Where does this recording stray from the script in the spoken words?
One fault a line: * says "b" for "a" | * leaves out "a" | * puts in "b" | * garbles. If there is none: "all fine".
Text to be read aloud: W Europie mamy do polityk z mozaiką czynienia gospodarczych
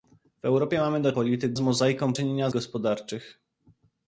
all fine